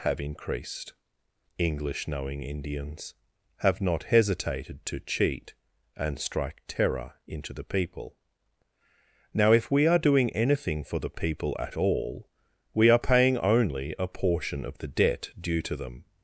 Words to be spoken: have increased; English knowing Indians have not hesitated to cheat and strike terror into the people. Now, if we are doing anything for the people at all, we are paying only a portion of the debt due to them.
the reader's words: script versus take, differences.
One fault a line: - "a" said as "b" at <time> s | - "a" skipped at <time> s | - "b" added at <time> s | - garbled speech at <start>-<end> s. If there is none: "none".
none